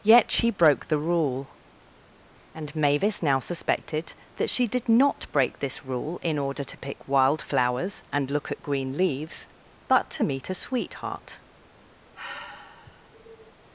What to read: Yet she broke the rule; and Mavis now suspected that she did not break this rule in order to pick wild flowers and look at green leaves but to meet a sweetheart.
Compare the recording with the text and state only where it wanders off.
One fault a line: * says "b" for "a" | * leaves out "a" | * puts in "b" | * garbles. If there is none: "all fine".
all fine